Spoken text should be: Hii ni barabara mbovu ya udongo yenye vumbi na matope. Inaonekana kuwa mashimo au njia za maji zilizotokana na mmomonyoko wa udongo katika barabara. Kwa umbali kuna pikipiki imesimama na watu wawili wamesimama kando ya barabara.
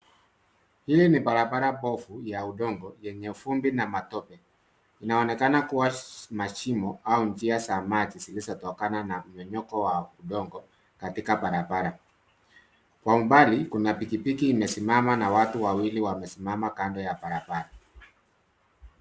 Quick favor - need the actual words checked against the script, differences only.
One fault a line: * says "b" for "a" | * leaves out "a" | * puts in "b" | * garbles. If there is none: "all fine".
all fine